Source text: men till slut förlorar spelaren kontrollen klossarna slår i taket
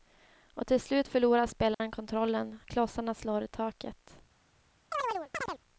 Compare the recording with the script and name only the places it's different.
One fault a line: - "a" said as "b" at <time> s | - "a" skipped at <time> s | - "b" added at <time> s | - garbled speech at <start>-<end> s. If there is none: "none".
- "men" said as "och" at 0.5 s